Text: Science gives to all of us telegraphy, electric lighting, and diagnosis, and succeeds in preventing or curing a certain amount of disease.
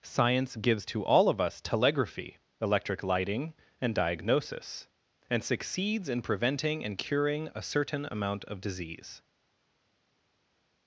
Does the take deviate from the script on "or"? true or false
true